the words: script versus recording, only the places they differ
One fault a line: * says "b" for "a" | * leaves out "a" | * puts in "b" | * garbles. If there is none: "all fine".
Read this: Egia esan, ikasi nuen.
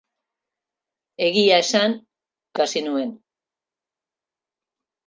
all fine